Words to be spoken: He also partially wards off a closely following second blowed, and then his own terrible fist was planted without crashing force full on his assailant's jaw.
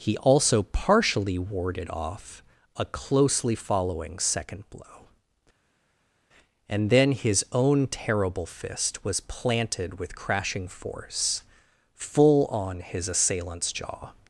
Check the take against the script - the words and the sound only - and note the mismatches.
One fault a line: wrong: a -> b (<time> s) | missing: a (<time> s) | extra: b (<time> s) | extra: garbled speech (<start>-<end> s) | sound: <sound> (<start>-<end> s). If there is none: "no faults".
wrong: wards -> warded (1.4 s)
wrong: blowed -> blow (4.7 s)
wrong: without -> with (10.0 s)